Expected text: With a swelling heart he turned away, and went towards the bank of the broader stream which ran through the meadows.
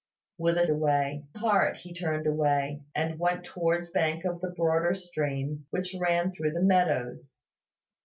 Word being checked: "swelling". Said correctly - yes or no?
no